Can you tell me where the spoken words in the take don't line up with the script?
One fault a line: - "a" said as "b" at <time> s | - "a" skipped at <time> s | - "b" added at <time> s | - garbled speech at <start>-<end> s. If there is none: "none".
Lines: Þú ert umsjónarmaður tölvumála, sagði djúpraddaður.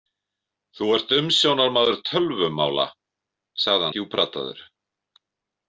none